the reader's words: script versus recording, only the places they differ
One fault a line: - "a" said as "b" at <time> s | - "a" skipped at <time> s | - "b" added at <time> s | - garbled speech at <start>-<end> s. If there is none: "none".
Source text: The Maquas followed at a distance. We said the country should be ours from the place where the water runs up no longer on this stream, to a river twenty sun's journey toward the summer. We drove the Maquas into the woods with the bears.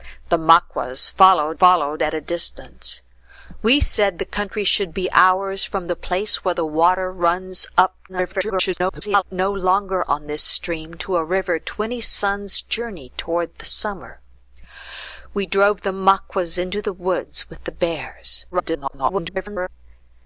- "followed" added at 1.5 s
- garbled speech at 8.1-9.2 s
- garbled speech at 18.5-19.7 s